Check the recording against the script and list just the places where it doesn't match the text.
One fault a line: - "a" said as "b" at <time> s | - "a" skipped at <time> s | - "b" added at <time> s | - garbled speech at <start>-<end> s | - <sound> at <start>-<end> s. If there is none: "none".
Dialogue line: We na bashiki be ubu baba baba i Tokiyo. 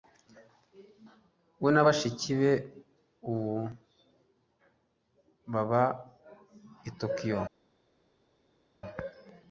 - "baba" skipped at 5.8 s